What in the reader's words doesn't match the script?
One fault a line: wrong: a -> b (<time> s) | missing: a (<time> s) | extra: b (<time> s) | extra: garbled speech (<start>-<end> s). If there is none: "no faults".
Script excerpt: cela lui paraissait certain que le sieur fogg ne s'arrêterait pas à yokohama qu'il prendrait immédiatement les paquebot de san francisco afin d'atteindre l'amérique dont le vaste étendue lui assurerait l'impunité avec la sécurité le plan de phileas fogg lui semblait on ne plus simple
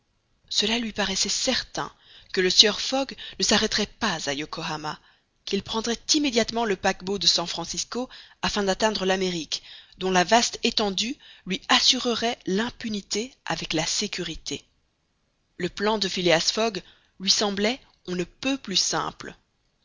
wrong: les -> le (6.6 s)
wrong: le -> la (10.1 s)
extra: peut (18.2 s)